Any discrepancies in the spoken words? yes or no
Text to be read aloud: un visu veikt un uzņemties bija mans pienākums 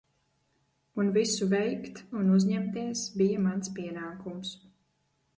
no